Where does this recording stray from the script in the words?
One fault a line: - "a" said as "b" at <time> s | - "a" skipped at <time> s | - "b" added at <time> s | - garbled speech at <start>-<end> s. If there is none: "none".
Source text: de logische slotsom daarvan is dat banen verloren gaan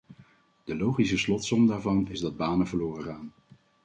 none